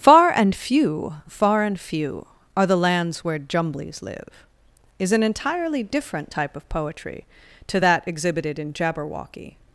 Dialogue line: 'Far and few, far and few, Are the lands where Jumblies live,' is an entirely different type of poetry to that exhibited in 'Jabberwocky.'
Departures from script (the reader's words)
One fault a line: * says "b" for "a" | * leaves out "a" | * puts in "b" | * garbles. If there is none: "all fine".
all fine